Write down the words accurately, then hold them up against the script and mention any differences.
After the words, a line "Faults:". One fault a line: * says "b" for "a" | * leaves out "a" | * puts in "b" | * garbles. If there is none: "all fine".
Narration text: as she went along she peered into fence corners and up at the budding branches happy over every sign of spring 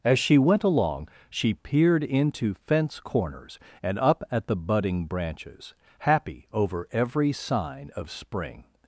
as she went along she peered into fence corners and up at the budding branches happy over every sign of spring
Faults:
all fine